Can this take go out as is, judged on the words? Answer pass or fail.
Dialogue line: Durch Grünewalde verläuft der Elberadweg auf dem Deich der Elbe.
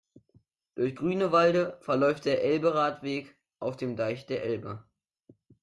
pass